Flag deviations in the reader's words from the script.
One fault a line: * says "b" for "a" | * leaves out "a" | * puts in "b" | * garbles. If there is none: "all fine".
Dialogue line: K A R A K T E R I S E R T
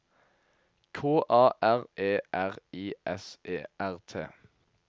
* leaves out "A K T"